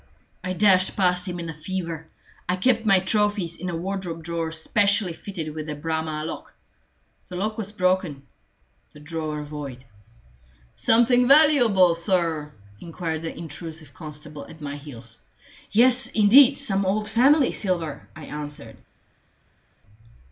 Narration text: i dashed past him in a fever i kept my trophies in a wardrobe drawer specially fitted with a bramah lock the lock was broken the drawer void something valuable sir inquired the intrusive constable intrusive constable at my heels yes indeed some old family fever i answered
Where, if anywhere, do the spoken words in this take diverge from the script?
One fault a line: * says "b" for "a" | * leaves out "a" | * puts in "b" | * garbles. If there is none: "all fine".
* leaves out "intrusive constable"
* says "silver" for "fever"